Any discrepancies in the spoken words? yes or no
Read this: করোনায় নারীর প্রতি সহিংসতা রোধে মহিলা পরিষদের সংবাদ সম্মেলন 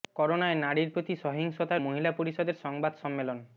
yes